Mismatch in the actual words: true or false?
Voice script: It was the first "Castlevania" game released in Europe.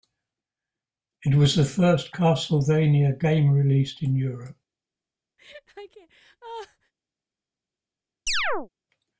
false